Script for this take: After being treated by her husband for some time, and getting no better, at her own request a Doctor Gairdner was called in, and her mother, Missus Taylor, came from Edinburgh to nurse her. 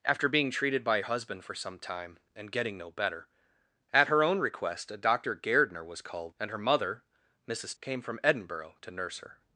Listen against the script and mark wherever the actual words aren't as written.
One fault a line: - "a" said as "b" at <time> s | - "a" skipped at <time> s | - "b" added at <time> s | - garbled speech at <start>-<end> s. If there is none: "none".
- "her" skipped at 1.0 s
- "in" skipped at 6.4 s
- "Taylor" skipped at 7.7 s